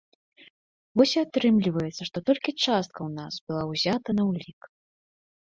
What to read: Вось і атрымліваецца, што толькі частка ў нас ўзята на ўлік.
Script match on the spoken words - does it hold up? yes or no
no